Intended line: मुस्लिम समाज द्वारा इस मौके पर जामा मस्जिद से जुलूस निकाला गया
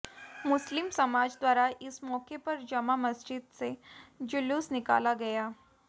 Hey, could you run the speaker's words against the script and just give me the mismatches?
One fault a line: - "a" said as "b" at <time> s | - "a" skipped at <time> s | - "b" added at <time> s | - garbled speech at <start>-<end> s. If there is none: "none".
none